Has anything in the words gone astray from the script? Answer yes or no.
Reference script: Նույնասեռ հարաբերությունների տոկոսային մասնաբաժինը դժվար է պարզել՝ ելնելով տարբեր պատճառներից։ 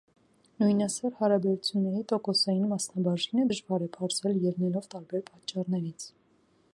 no